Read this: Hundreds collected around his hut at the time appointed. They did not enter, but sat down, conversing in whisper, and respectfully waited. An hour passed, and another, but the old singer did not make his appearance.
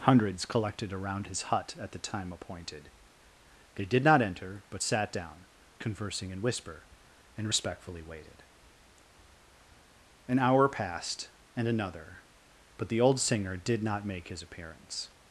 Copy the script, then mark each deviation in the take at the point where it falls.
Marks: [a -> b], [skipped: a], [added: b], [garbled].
Hundreds collected around his hut at the time appointed. They did not enter, but sat down, conversing in whisper, and respectfully waited. An hour passed, and another, but the old singer did not make his appearance.